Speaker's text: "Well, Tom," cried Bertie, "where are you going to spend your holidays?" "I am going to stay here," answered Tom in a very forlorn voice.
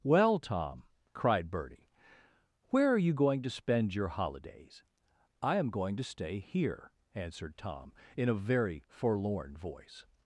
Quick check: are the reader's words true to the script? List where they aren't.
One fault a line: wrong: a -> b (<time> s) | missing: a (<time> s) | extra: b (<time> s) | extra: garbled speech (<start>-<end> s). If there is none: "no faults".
no faults